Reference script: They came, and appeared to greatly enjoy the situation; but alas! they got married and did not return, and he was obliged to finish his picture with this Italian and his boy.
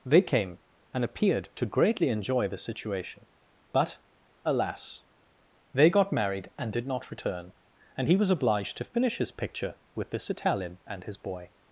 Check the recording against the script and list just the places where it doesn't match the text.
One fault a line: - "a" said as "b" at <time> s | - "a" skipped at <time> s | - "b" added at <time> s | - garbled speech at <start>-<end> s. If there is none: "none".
none